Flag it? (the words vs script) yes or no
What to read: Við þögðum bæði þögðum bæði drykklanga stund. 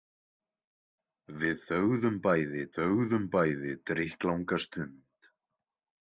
no